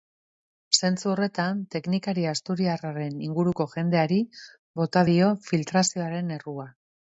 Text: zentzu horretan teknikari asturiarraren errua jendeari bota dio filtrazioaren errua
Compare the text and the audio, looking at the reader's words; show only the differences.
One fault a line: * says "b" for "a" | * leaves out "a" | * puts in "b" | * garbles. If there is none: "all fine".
* says "inguruko" for "errua"